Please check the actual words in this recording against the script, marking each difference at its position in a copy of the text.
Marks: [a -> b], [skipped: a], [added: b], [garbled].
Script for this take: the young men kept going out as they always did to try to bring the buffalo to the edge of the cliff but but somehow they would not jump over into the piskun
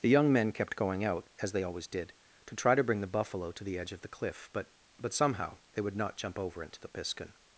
the young men kept going out as they always did to try to bring the buffalo to the edge of the cliff but but somehow they would not jump over into the piskun